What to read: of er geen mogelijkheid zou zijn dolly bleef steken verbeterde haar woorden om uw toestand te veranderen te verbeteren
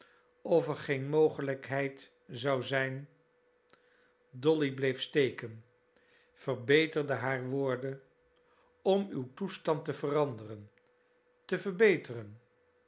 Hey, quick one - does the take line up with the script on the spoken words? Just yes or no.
yes